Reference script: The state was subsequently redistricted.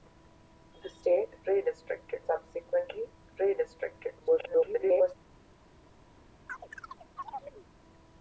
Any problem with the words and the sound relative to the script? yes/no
yes